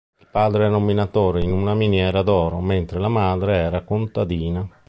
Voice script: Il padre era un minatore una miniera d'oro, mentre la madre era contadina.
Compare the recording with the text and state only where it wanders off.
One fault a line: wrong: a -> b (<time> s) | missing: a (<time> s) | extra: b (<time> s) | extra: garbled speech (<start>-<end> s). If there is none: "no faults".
extra: in (1.4 s)